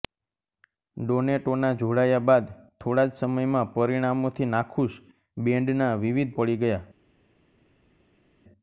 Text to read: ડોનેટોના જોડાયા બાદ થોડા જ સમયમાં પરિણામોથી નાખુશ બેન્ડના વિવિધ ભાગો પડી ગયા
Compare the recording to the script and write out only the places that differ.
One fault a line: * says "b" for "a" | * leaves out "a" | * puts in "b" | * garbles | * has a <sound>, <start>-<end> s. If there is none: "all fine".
* leaves out "ભાગો"